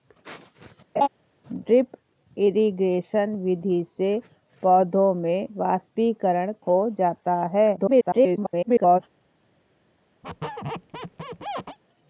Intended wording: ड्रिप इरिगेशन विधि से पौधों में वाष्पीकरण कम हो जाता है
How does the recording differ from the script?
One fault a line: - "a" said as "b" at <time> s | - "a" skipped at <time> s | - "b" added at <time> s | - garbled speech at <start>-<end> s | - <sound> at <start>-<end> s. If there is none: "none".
- laugh at 0.9-1.1 s
- "कम" skipped at 6.5 s
- garbled speech at 7.8-9.0 s
- squeak at 10.2-11.8 s